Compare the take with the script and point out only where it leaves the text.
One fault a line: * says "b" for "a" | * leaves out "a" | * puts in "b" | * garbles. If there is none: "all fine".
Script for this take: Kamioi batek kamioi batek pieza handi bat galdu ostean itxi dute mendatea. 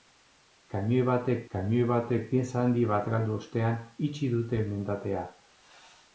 all fine